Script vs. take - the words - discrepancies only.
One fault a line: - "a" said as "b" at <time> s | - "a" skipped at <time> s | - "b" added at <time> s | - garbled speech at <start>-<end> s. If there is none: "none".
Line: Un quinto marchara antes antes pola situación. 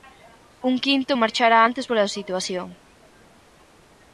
- "antes" skipped at 1.9 s